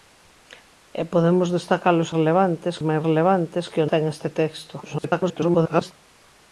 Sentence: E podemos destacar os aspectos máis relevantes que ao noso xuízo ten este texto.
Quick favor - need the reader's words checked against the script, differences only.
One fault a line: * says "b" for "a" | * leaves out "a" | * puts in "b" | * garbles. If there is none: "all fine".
* says "relevantes" for "aspectos"
* leaves out "noso xuízo"
* garbles